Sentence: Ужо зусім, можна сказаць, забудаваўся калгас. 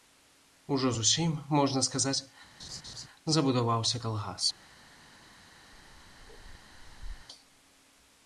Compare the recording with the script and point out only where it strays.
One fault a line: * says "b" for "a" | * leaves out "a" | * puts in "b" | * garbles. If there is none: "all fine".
all fine